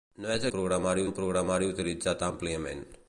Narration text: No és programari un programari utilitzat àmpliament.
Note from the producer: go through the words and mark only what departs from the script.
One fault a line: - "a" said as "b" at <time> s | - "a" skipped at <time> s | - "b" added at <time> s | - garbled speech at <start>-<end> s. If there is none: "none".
none